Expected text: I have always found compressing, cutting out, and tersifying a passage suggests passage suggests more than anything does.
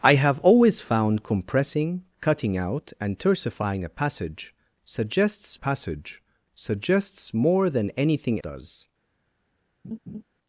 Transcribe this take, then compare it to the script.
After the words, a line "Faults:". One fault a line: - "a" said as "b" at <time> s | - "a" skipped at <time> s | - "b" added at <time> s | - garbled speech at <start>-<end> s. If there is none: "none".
I have always found compressing, cutting out, and tersifying a passage suggests passage suggests more than anything does.
Faults:
none